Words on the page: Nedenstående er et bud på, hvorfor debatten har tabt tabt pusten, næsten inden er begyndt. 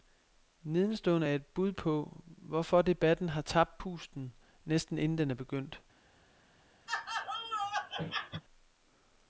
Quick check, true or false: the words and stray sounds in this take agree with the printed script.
false